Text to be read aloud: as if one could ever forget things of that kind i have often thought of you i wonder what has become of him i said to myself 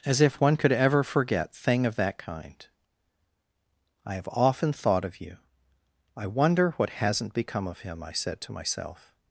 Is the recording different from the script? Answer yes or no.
yes